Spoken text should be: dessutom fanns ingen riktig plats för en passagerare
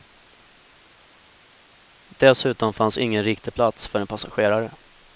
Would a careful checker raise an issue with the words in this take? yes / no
no